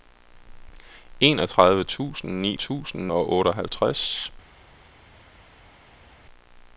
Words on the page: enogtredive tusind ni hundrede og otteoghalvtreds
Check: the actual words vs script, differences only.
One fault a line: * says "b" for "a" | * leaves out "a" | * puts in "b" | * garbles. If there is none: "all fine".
* says "tusind" for "hundrede"